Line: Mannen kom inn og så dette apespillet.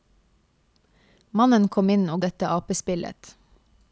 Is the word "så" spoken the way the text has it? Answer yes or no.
no